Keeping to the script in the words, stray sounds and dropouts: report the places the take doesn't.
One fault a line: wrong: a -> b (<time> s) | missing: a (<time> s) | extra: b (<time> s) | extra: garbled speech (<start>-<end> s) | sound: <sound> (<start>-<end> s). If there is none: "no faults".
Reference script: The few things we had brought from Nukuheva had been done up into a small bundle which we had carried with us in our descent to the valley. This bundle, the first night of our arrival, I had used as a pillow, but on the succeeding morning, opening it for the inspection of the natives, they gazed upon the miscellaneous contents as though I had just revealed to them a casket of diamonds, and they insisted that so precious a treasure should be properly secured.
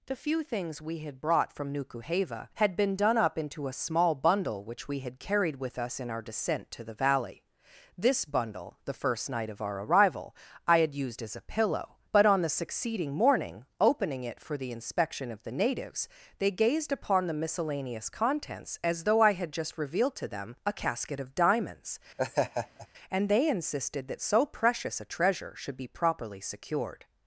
sound: laugh (22.2-22.9 s)